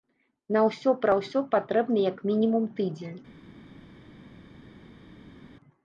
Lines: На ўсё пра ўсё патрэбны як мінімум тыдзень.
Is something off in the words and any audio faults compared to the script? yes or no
no